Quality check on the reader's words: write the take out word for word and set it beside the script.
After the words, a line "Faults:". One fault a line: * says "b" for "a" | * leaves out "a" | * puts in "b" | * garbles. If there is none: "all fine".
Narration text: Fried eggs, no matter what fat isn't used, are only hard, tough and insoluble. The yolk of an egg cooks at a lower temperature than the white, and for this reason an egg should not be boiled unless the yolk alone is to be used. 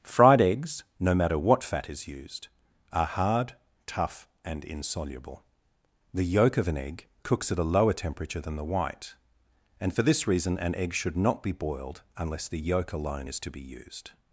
Fried eggs, no matter what fat is used, are hard, tough and insoluble. The yolk of an egg cooks at a lower temperature than the white, and for this reason an egg should not be boiled unless the yolk alone is to be used.
Faults:
* says "is" for "isn't"
* leaves out "only"